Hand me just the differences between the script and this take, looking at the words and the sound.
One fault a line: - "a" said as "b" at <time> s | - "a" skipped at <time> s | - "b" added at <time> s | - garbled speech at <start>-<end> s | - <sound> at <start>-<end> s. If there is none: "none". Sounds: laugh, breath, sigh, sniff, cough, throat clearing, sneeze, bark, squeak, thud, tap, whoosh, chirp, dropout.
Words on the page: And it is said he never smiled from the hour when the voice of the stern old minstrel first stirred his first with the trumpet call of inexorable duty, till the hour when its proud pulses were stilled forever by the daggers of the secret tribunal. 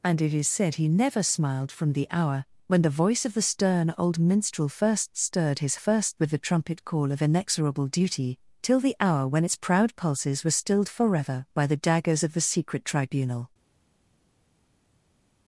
none